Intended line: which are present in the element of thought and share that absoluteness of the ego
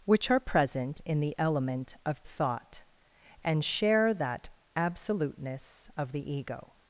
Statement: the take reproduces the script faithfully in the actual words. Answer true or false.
true